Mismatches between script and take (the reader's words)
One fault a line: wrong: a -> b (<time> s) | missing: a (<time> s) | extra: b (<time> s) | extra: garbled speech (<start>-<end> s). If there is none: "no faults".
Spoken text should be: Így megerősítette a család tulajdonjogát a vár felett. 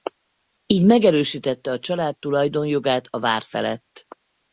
no faults